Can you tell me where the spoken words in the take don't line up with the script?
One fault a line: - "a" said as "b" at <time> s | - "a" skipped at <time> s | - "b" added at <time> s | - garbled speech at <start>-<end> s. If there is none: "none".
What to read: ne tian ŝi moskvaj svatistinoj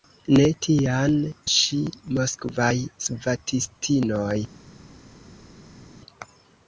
none